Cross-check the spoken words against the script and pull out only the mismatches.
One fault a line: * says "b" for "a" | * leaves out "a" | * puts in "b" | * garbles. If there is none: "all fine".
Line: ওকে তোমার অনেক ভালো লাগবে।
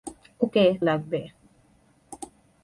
* leaves out "তোমার অনেক ভালো"